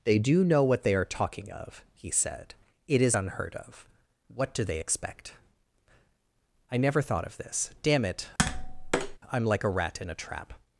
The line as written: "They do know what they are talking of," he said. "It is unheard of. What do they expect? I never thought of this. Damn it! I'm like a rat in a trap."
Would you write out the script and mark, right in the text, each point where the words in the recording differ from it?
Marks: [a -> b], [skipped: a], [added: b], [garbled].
"They do know what they are talking of," he said. "It is unheard of. What do they expect? I never thought of this. Damn it! I'm like a rat in a trap."